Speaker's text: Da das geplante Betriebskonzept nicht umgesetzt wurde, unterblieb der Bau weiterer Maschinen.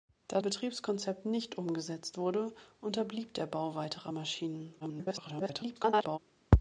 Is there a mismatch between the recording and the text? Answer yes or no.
yes